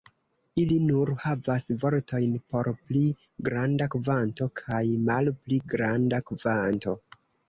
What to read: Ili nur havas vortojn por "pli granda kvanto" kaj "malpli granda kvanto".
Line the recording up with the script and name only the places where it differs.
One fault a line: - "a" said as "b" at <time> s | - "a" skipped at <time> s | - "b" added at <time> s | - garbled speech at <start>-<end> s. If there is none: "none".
none